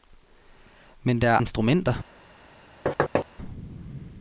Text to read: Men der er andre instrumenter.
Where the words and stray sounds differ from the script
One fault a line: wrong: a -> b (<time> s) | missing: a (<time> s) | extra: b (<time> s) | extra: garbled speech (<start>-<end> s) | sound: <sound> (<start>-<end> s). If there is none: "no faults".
missing: andre (1.4 s)
sound: thud (2.9-3.3 s)